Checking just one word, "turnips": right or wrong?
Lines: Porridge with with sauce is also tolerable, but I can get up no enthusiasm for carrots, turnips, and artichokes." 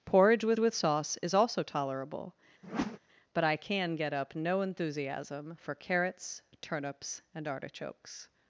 right